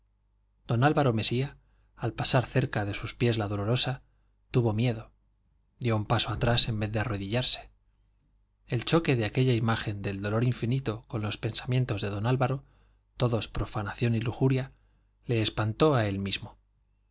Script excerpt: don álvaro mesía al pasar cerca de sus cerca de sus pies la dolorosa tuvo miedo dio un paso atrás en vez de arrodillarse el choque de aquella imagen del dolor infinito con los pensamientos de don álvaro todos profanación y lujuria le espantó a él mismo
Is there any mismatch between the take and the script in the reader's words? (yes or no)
yes